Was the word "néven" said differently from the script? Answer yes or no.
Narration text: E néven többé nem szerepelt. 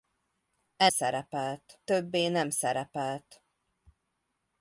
yes